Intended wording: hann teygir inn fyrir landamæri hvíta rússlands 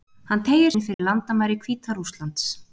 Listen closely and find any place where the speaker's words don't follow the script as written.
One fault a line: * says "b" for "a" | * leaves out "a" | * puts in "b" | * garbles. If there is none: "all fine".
all fine